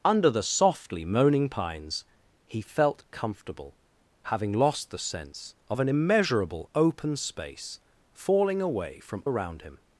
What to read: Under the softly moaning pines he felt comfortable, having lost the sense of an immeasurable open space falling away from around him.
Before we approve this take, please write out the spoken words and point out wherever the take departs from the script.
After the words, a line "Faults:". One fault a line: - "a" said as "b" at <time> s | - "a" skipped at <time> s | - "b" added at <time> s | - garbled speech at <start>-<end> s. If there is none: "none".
Under the softly moaning pines he felt comfortable, having lost the sense of an immeasurable open space falling away from around him.
Faults:
none